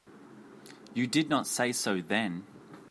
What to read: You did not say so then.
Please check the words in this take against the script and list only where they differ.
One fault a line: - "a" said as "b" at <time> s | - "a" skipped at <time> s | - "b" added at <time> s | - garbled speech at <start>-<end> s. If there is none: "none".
none